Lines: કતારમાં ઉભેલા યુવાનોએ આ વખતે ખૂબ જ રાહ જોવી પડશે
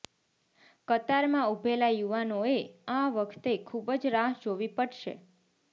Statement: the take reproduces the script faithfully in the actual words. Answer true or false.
true